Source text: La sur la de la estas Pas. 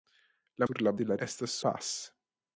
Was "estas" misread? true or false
false